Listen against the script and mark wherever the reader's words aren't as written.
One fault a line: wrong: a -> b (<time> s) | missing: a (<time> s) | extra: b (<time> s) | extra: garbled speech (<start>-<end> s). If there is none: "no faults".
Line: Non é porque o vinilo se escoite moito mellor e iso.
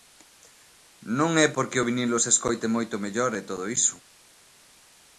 extra: todo (3.5 s)